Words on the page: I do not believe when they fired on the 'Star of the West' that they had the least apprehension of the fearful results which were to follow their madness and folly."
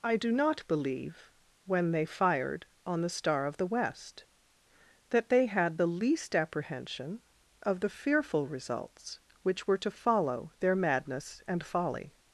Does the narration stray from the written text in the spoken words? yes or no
no